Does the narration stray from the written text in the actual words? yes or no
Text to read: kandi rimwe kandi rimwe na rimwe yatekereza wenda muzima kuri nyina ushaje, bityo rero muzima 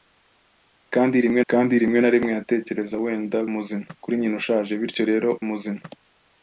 no